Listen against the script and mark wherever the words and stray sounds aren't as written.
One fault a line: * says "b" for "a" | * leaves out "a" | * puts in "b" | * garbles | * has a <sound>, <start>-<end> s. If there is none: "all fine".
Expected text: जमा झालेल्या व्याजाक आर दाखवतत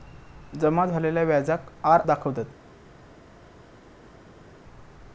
all fine